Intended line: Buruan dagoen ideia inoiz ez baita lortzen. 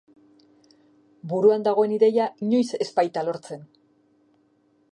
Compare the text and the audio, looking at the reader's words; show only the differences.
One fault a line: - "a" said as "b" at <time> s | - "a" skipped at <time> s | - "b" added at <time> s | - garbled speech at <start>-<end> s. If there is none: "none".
none